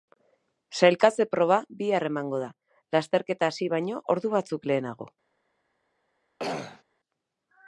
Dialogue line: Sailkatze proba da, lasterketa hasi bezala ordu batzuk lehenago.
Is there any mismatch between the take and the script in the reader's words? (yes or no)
yes